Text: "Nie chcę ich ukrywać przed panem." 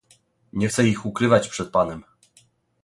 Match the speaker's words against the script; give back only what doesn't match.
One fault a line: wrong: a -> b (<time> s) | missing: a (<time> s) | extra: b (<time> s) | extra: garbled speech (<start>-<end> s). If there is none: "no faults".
no faults